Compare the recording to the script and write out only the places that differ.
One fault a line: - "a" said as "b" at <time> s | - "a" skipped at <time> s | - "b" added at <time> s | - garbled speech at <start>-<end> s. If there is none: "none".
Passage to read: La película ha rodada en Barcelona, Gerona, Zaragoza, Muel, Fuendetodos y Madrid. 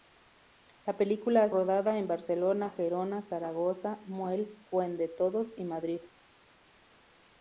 none